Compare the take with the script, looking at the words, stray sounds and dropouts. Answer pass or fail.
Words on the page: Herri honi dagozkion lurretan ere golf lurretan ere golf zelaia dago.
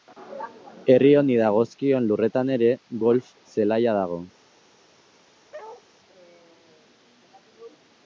fail